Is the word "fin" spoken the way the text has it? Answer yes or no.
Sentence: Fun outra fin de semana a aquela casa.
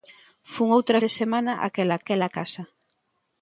no